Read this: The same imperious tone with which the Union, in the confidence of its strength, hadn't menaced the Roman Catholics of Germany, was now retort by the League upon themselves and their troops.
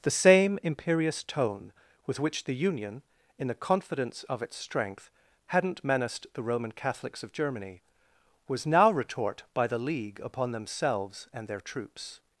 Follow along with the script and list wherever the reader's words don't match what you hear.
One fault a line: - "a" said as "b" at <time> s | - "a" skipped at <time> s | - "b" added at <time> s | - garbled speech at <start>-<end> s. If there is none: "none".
none